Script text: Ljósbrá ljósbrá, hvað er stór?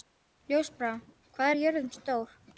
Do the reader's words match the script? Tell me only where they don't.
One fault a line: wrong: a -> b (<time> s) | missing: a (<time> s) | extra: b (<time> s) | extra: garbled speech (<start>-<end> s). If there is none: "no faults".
missing: ljósbrá (0.9 s)
extra: jörðin (1.6 s)